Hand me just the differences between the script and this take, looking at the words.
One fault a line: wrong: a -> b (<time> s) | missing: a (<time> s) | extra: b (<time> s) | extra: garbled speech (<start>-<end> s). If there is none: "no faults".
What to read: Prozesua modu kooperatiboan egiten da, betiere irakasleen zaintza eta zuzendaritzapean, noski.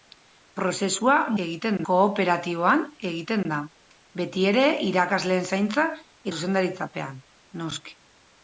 wrong: modu -> egiten (1.4 s)
missing: eta (5.9 s)